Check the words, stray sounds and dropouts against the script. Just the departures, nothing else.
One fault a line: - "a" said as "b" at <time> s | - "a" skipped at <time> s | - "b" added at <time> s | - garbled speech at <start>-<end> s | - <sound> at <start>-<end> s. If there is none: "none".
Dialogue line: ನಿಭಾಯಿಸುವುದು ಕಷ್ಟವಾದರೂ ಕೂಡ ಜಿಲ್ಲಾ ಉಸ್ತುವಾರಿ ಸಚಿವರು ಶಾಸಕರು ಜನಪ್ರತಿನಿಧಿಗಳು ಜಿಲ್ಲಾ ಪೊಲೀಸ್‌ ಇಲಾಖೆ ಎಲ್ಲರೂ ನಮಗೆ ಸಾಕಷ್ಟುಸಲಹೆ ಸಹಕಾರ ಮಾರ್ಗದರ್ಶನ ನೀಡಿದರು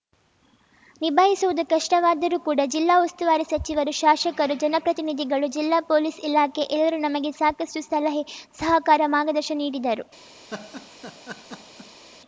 - laugh at 10.5-12.0 s